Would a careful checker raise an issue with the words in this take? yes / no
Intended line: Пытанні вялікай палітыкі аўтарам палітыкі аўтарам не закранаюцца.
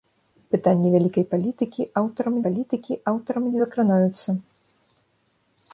no